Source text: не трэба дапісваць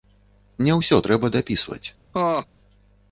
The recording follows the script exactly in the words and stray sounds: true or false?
false